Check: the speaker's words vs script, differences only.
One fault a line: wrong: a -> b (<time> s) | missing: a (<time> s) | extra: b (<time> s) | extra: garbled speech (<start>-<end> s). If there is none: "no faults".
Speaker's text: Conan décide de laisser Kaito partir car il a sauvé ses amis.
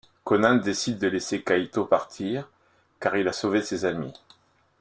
no faults